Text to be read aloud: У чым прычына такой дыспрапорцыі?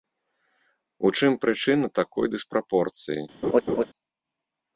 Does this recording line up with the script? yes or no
yes